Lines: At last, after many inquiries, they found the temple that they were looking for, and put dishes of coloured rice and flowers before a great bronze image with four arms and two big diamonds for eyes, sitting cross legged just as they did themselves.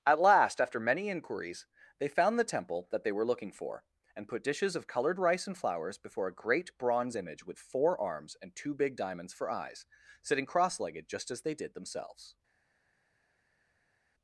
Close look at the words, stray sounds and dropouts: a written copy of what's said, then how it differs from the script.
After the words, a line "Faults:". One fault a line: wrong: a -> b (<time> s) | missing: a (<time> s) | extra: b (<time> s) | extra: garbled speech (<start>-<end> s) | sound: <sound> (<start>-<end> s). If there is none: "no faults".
At last, after many inquiries, they found the temple that they were looking for, and put dishes of coloured rice and flowers before a great bronze image with four arms and two big diamonds for eyes, sitting cross legged just as they did themselves.
Faults:
no faults